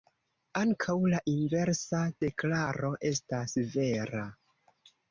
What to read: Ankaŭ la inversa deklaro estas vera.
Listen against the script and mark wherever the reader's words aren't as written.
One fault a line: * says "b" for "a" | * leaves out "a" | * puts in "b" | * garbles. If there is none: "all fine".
all fine